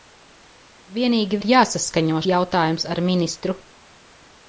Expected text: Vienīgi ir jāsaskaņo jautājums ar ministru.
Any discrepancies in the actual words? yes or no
no